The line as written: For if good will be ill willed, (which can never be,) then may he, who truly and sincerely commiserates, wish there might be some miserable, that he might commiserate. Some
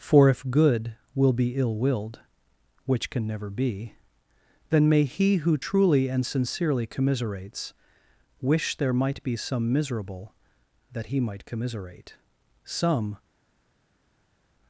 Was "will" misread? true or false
false